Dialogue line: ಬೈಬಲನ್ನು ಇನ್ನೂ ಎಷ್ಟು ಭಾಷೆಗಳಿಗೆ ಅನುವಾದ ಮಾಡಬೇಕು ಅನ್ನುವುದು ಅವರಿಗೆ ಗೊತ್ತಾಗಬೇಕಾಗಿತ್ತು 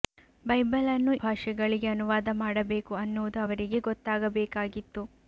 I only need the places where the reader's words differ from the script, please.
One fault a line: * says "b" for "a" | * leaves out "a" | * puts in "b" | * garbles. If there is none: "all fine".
* leaves out "ಇನ್ನೂ ಎಷ್ಟು"